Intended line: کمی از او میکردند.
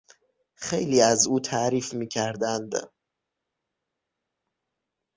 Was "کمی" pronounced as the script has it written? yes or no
no